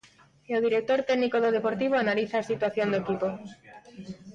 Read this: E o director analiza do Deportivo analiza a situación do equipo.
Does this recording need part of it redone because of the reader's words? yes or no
yes